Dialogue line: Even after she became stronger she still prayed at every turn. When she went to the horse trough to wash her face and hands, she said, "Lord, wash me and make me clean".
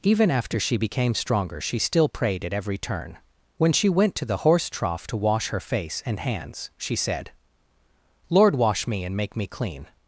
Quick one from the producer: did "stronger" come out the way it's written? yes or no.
yes